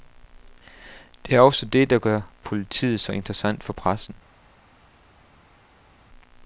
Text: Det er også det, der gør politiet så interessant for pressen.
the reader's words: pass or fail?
pass